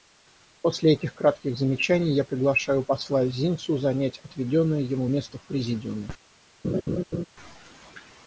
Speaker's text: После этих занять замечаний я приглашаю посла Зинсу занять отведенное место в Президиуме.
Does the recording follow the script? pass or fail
fail